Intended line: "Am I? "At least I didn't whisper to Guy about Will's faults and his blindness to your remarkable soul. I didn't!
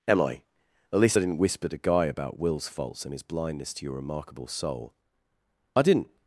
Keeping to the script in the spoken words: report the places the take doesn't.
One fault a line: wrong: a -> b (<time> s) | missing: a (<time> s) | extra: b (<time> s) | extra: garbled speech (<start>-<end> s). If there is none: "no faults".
no faults